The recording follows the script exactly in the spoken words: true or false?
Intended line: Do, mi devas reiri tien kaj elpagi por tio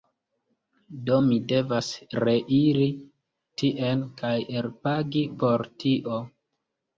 true